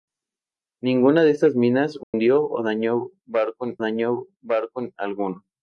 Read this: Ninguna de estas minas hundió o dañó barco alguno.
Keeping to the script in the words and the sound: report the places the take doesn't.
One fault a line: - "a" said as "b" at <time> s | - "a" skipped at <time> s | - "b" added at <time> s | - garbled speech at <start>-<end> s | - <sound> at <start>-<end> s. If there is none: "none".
- dropout at 2.0-2.1 s
- "dañó barco" added at 3.8 s